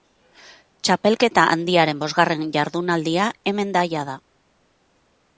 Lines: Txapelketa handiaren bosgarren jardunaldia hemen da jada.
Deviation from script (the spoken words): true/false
false